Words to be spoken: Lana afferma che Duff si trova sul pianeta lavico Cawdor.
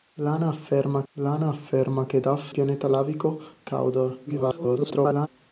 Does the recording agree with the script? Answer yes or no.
no